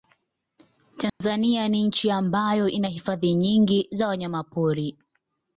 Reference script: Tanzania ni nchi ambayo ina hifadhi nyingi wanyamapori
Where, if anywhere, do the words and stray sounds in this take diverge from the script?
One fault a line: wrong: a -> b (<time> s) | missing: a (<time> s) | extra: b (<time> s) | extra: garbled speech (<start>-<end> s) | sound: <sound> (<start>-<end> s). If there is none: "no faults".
sound: dropout (1.1-1.2 s)
extra: za (3.9 s)